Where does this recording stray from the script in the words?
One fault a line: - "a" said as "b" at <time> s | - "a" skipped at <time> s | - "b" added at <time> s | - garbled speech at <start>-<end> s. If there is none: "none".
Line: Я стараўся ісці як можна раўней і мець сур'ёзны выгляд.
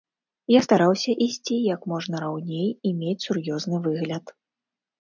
none